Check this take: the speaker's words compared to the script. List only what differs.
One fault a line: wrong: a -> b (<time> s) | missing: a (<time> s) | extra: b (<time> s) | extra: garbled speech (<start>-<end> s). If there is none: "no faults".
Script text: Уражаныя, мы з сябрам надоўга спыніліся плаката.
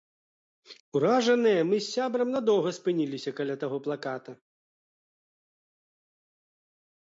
extra: каля таго (3.4 s)